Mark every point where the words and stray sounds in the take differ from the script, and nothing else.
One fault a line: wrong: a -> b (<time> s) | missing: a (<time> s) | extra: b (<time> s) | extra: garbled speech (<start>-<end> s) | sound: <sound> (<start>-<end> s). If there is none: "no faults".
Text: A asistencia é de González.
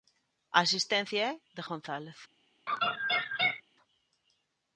sound: laugh (2.7-3.6 s)